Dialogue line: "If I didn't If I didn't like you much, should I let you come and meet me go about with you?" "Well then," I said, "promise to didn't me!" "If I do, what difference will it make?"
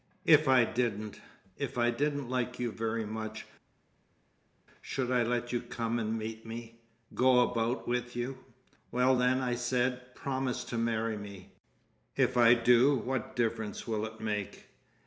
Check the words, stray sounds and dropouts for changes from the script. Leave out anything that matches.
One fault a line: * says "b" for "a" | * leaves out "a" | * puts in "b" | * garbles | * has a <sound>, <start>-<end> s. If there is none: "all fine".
* puts in "very"
* says "marry" for "didn't"